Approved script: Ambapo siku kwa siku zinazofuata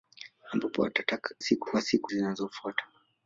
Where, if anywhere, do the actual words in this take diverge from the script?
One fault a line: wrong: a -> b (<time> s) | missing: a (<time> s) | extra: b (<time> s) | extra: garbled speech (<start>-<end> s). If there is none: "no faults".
no faults